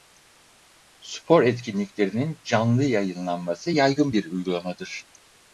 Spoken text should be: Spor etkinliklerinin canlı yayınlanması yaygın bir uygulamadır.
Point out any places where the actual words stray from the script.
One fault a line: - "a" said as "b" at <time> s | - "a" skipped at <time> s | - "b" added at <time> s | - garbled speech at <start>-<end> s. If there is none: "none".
none